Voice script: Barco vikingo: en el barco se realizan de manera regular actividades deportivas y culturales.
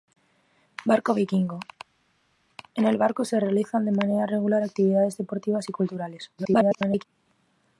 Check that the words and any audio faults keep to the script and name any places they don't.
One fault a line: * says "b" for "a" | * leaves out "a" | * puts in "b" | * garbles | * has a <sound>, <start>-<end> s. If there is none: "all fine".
* garbles